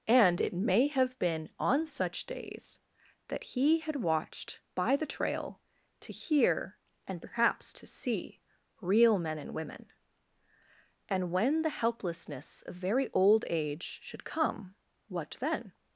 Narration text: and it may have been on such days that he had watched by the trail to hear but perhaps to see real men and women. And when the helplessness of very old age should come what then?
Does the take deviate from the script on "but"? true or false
true